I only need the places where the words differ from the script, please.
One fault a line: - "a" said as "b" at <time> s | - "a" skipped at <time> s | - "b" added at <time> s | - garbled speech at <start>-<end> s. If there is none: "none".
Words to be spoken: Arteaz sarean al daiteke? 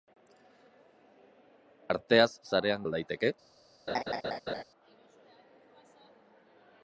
none